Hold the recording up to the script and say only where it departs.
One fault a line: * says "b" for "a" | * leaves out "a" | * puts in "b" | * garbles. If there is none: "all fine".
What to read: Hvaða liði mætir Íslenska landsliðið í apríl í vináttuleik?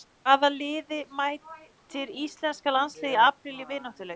all fine